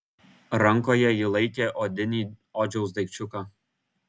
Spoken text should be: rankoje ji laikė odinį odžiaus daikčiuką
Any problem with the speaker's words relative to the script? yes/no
no